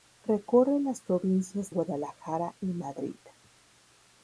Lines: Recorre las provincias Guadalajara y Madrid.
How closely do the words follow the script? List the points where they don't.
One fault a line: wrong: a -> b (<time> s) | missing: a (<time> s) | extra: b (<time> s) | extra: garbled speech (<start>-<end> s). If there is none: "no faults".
no faults